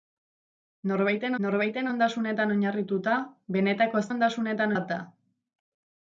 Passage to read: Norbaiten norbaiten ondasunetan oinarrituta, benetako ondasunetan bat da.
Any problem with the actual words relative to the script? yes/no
no